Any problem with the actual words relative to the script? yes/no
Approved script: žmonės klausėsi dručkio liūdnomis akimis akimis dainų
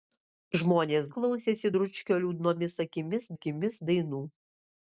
no